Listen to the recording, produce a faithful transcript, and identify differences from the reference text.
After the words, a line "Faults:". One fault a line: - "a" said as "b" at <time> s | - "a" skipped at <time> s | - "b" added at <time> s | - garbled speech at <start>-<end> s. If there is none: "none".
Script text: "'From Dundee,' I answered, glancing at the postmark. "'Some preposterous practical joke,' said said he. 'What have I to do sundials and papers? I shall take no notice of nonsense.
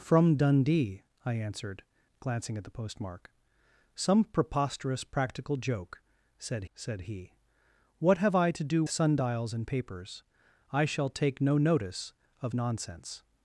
"'From Dundee,' I answered, glancing at the postmark. "'Some preposterous practical joke,' said said he. 'What have I to do sundials and papers? I shall take no notice of nonsense.
Faults:
none